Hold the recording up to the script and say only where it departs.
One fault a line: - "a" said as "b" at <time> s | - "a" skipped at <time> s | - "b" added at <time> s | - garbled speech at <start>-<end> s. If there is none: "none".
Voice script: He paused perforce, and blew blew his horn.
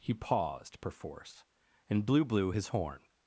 none